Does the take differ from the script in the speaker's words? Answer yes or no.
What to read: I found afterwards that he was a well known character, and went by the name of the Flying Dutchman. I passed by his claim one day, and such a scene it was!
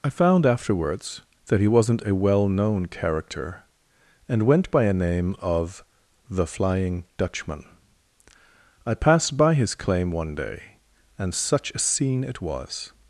yes